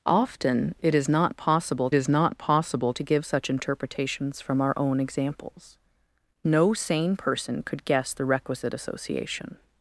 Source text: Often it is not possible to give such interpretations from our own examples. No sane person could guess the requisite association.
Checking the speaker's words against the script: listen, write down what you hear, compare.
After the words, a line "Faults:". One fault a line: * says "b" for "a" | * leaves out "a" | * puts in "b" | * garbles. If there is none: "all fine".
Often it is not possible is not possible to give such interpretations from our own examples. No sane person could guess the requisite association.
Faults:
* puts in "is not possible"